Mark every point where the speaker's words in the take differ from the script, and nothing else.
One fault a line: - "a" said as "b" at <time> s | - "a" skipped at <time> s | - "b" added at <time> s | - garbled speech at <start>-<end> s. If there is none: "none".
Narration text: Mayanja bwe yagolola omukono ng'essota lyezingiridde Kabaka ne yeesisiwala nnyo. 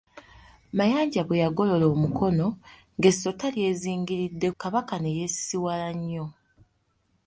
none